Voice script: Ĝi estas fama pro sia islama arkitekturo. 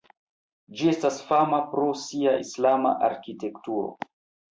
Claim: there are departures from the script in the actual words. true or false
false